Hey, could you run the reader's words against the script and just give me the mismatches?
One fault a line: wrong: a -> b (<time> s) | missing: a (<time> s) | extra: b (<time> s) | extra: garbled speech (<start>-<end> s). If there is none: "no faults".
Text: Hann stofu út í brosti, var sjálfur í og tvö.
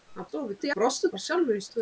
no faults